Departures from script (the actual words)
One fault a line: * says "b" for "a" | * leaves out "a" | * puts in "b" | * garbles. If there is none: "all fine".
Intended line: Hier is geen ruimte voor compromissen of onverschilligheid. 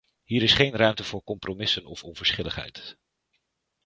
all fine